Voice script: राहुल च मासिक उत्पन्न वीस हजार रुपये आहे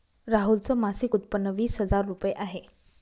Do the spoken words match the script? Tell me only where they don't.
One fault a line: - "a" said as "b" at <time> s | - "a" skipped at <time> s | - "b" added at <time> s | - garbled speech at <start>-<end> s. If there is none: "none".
none